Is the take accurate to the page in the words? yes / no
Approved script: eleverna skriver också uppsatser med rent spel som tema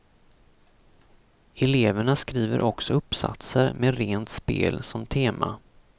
yes